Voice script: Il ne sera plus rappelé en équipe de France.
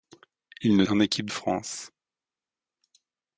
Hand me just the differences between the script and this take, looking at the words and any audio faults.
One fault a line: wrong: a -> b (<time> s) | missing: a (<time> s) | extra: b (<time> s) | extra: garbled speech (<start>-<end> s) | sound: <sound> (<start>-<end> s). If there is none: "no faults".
missing: sera plus rappelé (0.8 s)
missing: de (1.3 s)